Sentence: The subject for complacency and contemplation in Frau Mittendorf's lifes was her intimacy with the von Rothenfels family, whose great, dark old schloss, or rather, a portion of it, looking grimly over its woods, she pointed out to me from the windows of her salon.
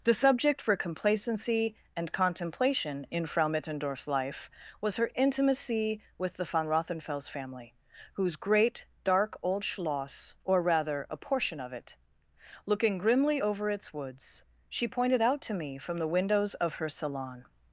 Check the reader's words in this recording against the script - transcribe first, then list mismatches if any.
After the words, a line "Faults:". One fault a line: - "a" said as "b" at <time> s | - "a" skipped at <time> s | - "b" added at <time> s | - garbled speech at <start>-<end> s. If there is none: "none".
The subject for complacency and contemplation in Frau Mittendorf's life was her intimacy with the von Rothenfels family, whose great, dark old schloss, or rather, a portion of it, looking grimly over its woods, she pointed out to me from the windows of her salon.
Faults:
- "lifes" said as "life" at 4.1 s